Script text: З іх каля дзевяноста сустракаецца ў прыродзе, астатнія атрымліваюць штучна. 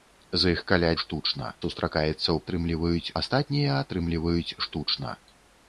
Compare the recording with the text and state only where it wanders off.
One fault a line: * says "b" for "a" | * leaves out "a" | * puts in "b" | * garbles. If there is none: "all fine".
* says "штучна" for "дзевяноста"
* says "атрымліваюць" for "прыродзе"